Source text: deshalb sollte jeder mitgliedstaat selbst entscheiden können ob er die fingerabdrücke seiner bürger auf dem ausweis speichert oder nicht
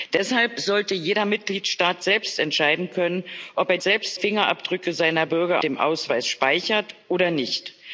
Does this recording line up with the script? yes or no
no